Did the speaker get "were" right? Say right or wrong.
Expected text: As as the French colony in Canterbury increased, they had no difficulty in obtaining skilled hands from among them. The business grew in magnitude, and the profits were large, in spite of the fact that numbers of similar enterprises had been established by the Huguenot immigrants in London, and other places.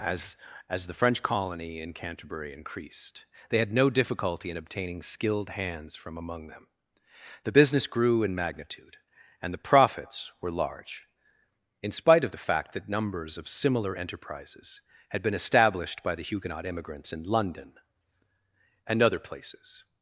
right